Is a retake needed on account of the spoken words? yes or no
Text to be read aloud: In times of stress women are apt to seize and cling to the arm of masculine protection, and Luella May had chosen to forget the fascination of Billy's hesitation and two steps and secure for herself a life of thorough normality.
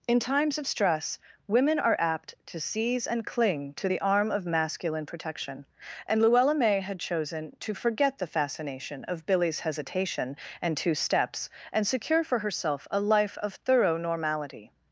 no